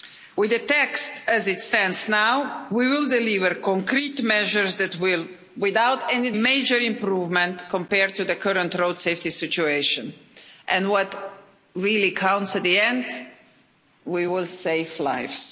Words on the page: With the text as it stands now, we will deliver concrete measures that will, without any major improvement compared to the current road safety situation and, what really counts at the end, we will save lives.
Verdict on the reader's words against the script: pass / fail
pass